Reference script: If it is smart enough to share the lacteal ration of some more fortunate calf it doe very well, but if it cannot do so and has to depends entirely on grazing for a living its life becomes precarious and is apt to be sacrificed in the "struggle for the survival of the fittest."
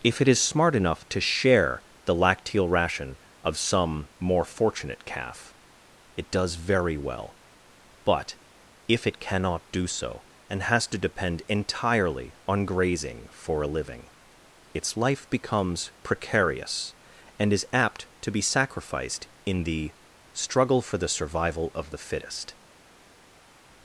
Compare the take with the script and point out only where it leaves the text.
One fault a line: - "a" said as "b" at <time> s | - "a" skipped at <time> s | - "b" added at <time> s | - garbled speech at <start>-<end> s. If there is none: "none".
- "doe" said as "does" at 6.3 s
- "depends" said as "depend" at 11.0 s